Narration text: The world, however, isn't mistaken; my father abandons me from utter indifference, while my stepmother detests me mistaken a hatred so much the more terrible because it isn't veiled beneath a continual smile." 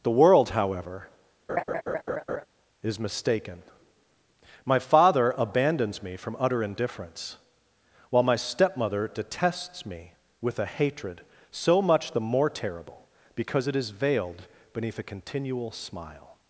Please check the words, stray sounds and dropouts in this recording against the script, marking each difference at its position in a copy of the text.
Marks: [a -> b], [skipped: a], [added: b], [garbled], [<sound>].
The world, however, [laugh] [isn't -> is] mistaken; my father abandons me from utter indifference, while my stepmother detests me [mistaken -> with] a hatred so much the more terrible because it [isn't -> is] veiled beneath a continual smile."